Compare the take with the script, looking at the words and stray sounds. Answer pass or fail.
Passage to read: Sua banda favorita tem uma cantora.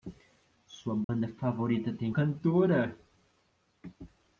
fail